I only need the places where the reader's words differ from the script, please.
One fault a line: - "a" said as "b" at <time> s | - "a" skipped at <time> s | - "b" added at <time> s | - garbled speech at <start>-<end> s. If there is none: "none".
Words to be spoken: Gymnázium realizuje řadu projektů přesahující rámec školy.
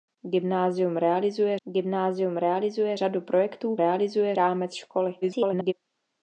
- "gymnázium realizuje" added at 1.6 s
- "přesahující" said as "realizuje" at 3.7 s
- garbled speech at 5.2-5.7 s